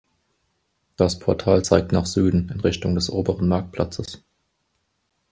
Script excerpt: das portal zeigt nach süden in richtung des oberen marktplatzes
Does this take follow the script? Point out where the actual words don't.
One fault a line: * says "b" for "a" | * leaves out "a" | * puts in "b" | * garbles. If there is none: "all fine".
all fine